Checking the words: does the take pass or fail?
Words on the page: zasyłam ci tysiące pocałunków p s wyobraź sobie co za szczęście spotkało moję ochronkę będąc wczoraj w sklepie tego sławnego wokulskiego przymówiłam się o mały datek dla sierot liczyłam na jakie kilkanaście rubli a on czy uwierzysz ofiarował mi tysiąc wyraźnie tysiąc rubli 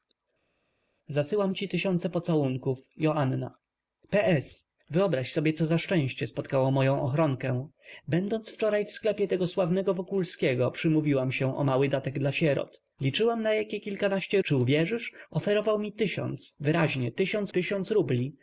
fail